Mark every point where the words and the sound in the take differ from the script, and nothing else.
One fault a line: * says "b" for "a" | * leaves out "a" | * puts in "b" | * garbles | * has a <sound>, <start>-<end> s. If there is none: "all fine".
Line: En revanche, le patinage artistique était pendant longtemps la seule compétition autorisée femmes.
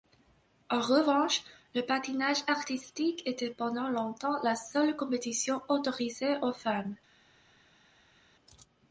* puts in "aux"